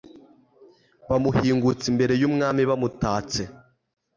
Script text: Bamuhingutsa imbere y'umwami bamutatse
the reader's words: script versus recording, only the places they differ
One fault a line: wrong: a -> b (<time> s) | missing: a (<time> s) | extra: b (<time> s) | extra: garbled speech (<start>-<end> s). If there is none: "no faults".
no faults